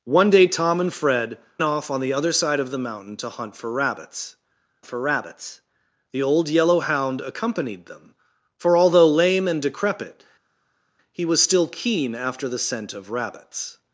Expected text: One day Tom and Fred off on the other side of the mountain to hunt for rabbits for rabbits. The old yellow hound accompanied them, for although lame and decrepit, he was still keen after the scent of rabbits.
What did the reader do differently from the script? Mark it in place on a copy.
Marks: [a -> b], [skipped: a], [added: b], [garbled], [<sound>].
One day Tom and Fred off on the other side of the mountain to hunt for rabbits for rabbits. The old yellow hound accompanied them, for although lame and decrepit, he was still keen after the scent of rabbits.